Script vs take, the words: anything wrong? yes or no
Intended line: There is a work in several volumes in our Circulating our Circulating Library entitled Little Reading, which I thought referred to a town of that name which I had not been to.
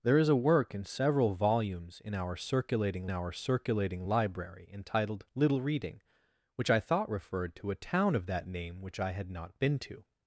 no